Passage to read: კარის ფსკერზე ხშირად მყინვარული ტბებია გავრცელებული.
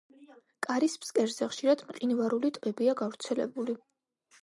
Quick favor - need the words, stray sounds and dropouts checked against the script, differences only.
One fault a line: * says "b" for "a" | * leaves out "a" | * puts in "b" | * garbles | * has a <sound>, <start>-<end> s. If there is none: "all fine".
all fine